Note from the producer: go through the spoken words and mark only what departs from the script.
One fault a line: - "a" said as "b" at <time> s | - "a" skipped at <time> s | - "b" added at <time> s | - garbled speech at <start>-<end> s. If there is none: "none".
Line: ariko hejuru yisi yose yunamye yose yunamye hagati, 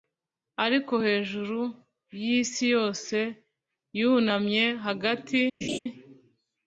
- "yose yunamye" skipped at 4.6 s